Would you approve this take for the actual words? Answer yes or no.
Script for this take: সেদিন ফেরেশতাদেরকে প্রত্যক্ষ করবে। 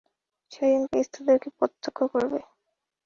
yes